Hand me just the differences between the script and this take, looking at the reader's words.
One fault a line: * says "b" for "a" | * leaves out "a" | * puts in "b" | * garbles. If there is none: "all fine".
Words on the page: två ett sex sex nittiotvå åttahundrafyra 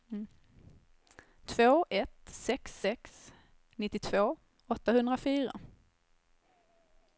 all fine